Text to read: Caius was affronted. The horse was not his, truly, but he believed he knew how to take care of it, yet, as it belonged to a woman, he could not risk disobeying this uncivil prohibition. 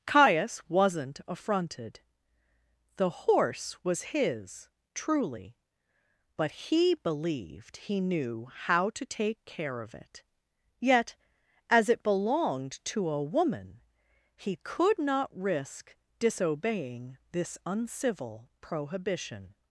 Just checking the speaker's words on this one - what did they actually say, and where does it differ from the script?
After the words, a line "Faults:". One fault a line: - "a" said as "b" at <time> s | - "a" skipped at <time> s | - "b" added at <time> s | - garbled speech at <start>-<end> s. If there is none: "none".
Caius wasn't affronted. The horse was his, truly, but he believed he knew how to take care of it, yet, as it belonged to a woman, he could not risk disobeying this uncivil prohibition.
Faults:
- "was" said as "wasn't" at 0.7 s
- "not" skipped at 4.0 s